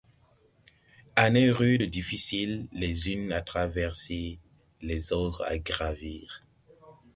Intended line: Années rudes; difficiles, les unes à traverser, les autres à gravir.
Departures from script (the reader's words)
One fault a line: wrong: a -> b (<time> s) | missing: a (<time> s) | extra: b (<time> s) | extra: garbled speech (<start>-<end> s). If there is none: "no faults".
no faults